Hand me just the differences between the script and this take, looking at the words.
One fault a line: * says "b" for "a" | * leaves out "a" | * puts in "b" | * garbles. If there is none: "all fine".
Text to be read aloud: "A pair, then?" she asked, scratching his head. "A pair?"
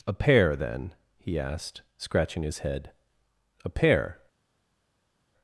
* says "he" for "she"